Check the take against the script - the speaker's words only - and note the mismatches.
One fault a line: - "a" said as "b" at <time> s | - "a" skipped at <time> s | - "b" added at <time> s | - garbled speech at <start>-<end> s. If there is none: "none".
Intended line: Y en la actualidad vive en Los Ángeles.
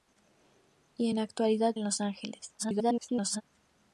- "vive" skipped at 1.8 s
- garbled speech at 2.6-3.4 s